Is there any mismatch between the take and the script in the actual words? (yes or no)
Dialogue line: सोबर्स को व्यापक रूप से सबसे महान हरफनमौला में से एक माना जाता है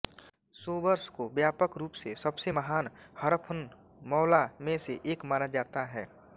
no